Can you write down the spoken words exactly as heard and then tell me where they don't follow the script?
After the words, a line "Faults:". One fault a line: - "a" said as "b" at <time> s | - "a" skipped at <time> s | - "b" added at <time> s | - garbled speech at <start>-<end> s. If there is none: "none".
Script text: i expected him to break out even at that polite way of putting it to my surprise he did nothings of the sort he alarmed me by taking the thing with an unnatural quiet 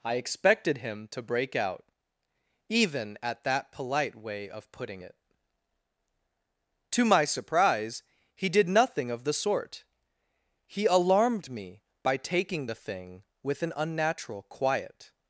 i expected him to break out even at that polite way of putting it to my surprise he did nothing of the sort he alarmed me by taking the thing with an unnatural quiet
Faults:
- "nothings" said as "nothing" at 8.7 s